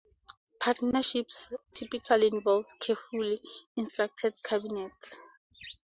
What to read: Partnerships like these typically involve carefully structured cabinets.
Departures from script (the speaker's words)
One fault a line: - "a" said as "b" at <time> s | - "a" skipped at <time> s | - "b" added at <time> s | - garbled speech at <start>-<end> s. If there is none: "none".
- "like these" skipped at 1.5 s